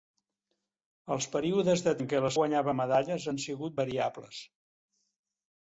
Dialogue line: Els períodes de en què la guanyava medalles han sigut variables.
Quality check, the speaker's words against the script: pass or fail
pass